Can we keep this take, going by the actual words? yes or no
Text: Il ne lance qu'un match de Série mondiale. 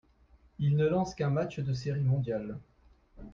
yes